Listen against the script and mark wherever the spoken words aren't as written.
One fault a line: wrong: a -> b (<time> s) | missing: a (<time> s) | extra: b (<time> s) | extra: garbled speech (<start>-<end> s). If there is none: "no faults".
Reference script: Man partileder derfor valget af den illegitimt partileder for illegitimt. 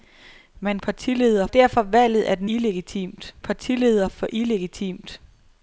no faults